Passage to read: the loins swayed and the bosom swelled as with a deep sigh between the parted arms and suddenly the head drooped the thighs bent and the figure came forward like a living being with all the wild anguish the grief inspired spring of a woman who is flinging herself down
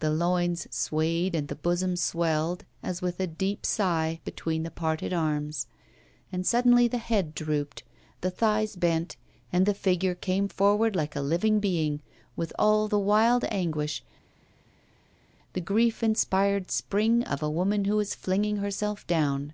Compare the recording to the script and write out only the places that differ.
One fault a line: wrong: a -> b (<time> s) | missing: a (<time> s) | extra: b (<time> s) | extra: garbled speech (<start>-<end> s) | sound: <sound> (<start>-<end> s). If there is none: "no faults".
no faults